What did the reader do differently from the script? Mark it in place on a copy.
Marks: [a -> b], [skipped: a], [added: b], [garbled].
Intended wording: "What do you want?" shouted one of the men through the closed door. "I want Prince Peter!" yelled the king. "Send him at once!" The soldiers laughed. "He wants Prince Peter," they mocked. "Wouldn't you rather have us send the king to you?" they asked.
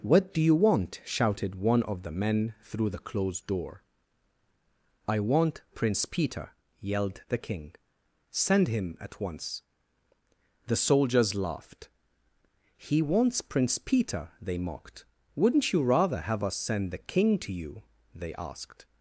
"What do you want?" shouted one of the men through the closed door. "I want Prince Peter!" yelled the king. "Send him at once!" The soldiers laughed. "He wants Prince Peter," they mocked. "Wouldn't you rather have us send the king to you?" they asked.